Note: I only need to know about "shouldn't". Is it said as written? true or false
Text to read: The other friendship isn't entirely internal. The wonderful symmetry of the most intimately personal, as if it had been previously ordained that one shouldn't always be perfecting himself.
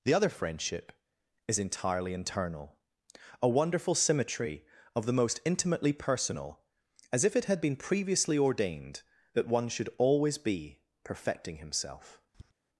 false